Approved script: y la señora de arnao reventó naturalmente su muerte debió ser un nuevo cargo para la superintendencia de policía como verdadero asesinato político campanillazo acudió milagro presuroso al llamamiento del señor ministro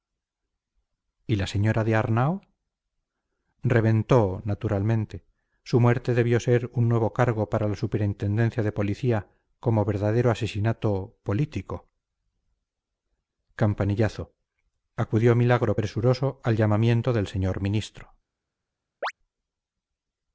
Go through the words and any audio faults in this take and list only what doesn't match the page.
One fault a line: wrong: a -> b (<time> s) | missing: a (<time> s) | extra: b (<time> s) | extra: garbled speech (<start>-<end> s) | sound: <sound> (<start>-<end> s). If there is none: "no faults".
sound: chirp (19.0-19.1 s)